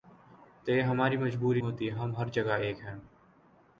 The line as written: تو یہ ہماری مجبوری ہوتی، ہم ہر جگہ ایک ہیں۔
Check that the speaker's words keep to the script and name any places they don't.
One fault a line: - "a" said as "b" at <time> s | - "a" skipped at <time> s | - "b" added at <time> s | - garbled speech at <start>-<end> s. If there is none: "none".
none